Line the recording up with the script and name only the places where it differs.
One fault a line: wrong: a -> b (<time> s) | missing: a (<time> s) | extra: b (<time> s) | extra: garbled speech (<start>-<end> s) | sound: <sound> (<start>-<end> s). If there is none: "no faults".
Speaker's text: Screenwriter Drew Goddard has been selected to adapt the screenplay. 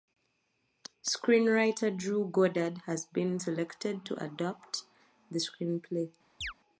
sound: chirp (6.4-6.5 s)